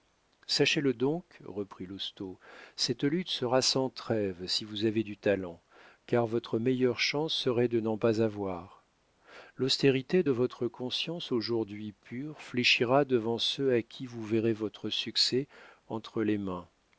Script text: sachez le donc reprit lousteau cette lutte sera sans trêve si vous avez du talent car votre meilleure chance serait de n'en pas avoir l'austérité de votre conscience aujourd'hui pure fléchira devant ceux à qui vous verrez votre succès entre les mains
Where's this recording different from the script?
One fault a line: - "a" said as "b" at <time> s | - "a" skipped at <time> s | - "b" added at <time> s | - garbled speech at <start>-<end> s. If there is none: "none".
none